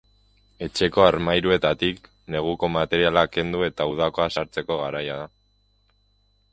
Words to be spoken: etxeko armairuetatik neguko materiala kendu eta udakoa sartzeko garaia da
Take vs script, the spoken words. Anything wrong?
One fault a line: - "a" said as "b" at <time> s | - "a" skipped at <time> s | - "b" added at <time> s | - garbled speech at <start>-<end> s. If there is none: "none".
none